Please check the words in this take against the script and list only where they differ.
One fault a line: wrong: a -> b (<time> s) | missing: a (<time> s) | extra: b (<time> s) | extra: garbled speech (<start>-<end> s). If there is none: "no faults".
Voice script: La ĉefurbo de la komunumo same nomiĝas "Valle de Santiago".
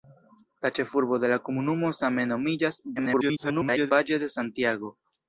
extra: garbled speech (3.0-3.9 s)